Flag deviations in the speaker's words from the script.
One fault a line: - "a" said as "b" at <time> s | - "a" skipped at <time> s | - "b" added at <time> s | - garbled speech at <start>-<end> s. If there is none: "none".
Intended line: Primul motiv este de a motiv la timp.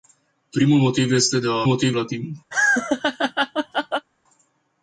none